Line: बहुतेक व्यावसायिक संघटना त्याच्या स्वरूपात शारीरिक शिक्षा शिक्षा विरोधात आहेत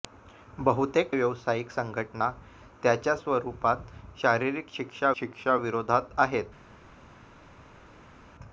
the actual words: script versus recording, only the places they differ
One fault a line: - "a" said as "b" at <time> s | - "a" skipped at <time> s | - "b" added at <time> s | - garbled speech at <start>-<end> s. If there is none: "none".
none